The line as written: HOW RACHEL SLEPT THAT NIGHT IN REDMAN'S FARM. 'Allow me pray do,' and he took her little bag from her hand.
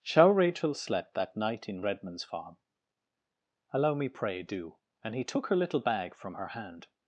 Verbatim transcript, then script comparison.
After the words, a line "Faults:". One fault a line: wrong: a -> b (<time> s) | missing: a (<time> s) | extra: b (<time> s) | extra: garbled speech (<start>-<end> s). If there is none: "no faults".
Shall RACHEL SLEPT THAT NIGHT IN REDMAN'S FARM. 'Allow me pray do,' and he took her little bag from her hand.
Faults:
wrong: HOW -> Shall (0.0 s)